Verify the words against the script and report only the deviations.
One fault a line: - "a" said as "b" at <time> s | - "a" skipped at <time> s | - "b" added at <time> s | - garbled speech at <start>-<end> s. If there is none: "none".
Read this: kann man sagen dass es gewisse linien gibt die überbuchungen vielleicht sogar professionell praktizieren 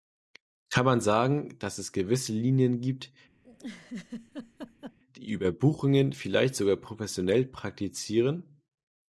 none